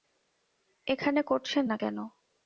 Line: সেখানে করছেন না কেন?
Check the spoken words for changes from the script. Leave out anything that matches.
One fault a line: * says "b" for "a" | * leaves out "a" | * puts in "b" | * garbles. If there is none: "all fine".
* says "এখানে" for "সেখানে"